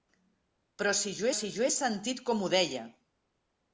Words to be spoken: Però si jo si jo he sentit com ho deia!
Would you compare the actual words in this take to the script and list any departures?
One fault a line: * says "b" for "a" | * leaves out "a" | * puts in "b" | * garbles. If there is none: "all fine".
all fine